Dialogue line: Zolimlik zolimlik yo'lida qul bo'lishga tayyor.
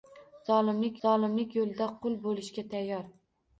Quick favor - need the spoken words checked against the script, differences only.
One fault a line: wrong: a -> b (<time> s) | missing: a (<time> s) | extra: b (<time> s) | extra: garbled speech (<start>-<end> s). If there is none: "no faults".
no faults